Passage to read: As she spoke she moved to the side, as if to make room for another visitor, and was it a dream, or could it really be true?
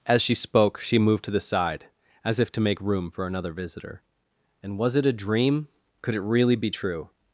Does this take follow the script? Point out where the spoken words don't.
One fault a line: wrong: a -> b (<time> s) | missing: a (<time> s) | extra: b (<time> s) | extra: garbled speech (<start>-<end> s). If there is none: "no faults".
missing: or (5.7 s)